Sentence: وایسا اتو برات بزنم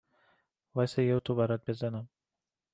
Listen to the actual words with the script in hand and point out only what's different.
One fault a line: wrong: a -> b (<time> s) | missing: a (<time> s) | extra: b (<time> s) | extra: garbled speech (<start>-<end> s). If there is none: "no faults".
extra: یه (1.0 s)